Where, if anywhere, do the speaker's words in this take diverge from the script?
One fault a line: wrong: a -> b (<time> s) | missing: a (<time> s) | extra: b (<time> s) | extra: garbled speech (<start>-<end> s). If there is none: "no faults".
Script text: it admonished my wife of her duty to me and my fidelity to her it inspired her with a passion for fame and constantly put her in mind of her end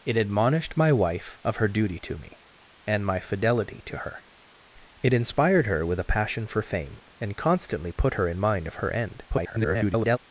extra: garbled speech (9.3-10.2 s)